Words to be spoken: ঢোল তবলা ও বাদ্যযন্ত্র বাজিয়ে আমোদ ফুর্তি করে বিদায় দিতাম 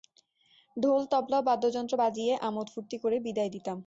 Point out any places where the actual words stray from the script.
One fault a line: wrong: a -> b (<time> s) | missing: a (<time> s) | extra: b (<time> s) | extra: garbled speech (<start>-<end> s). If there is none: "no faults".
no faults